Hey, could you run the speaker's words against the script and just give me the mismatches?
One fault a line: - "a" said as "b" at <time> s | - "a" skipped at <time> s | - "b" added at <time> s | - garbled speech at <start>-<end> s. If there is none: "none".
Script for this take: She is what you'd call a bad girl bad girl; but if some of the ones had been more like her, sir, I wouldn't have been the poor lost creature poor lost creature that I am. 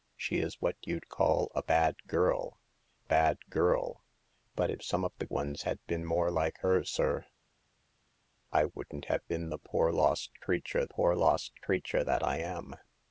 none